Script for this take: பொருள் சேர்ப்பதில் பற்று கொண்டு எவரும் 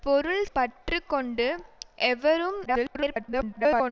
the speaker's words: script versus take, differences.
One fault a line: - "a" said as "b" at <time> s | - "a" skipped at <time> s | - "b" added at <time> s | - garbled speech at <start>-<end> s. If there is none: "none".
- "சேர்ப்பதில்" skipped at 0.5 s
- garbled speech at 2.6-3.9 s